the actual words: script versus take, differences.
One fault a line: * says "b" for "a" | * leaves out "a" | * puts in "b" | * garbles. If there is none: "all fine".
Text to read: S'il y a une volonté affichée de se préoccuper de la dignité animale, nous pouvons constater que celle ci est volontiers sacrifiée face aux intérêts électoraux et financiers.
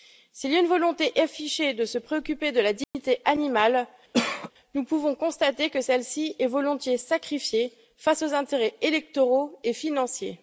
all fine